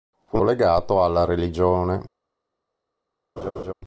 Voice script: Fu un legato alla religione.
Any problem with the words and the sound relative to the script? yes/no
yes